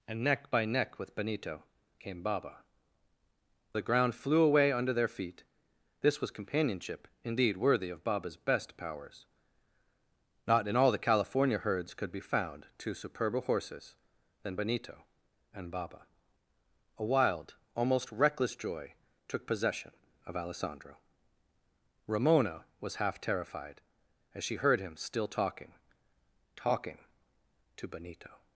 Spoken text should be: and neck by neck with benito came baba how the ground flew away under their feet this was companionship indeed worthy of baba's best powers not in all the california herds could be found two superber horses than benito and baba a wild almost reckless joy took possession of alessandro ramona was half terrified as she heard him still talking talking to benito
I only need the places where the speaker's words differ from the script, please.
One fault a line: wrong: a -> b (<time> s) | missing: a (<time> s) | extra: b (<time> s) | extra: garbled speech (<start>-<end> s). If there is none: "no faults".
missing: how (2.6 s)